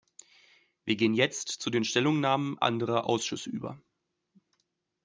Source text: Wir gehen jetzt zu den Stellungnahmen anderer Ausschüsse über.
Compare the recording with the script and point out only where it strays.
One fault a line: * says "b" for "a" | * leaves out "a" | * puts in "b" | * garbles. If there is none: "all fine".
all fine